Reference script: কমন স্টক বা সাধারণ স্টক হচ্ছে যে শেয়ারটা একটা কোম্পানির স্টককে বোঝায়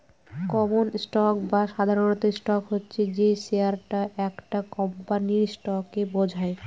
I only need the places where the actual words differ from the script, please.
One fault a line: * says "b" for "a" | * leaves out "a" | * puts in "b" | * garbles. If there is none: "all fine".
all fine